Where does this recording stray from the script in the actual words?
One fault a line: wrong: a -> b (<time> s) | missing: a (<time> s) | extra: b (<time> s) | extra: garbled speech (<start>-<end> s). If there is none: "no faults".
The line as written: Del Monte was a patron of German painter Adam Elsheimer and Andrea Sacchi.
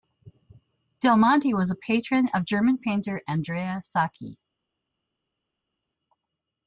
missing: Adam Elsheimer and (3.2 s)